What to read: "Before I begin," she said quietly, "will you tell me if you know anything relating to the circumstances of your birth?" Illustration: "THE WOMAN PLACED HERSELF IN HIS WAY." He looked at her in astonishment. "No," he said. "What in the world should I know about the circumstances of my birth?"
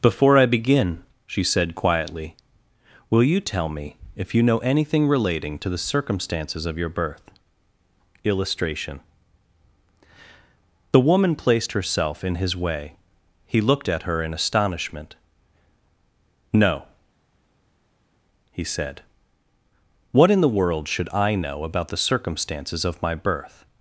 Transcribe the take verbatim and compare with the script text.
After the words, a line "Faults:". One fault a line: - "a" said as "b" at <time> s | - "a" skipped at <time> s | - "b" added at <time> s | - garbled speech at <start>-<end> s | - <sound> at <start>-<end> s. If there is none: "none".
"Before I begin," she said quietly, "will you tell me if you know anything relating to the circumstances of your birth?" Illustration: "THE WOMAN PLACED HERSELF IN HIS WAY." He looked at her in astonishment. "No," he said. "What in the world should I know about the circumstances of my birth?"
Faults:
none